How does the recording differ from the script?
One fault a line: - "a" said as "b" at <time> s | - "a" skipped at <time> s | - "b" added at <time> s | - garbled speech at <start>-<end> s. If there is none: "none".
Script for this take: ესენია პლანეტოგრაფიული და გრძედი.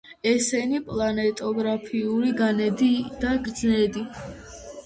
- "განედი" added at 2.4 s